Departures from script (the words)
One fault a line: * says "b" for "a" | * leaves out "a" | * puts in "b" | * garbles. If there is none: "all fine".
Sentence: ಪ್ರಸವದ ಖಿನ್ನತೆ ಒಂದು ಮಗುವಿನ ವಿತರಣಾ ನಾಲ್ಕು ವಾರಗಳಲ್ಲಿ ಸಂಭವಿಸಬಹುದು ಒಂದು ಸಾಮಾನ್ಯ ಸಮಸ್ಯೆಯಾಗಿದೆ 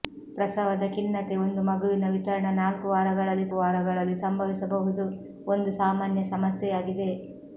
* puts in "ವಾರಗಳಲ್ಲಿ"